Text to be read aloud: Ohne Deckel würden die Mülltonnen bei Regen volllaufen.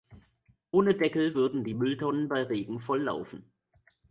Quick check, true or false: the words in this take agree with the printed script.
true